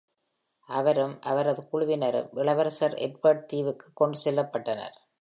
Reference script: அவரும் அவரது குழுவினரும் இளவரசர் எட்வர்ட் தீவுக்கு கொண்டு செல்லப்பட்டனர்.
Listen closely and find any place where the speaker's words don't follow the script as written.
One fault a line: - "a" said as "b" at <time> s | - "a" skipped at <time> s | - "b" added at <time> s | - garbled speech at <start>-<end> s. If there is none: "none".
none